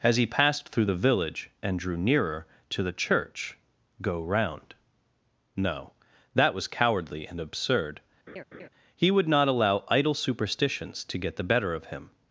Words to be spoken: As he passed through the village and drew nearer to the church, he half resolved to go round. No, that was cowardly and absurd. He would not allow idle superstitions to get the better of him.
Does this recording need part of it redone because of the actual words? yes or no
yes